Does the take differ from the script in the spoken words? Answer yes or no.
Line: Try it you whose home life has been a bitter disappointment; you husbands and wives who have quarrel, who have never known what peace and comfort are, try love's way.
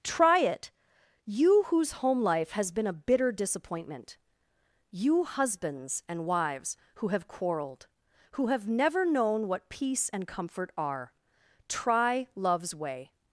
yes